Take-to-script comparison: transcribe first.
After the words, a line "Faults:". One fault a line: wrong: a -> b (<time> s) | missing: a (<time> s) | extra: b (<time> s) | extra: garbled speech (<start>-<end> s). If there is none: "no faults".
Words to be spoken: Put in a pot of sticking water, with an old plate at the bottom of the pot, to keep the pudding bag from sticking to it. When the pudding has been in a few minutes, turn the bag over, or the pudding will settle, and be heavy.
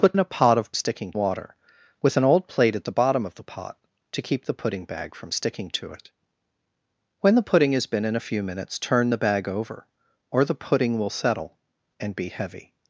Put in a pot of sticking water, with an old plate at the bottom of the pot, to keep the pudding bag from sticking to it. When the pudding has been in a few minutes, turn the bag over, or the pudding will settle, and be heavy.
Faults:
no faults